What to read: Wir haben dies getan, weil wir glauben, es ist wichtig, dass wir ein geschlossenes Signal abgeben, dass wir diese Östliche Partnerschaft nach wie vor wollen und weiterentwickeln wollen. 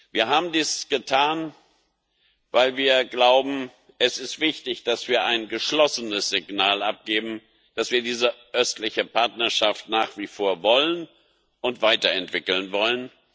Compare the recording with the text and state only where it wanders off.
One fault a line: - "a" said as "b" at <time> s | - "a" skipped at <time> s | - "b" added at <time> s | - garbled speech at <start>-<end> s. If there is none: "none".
none